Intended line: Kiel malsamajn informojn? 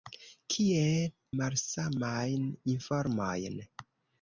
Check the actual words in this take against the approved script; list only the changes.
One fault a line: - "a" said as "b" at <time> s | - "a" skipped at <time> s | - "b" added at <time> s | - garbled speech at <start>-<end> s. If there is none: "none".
none